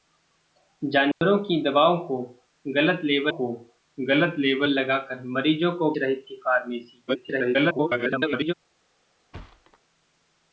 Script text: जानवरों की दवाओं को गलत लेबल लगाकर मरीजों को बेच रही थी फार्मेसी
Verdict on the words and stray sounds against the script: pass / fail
fail